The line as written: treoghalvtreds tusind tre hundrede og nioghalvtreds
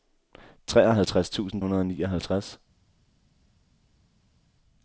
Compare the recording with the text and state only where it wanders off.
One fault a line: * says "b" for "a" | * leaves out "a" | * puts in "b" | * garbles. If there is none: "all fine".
* leaves out "tre"